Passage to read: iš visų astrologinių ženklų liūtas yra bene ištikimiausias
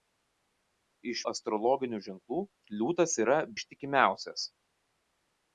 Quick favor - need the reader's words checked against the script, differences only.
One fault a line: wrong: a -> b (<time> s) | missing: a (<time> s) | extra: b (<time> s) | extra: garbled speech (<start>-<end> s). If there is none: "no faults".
missing: visų (1.2 s)
missing: bene (3.4 s)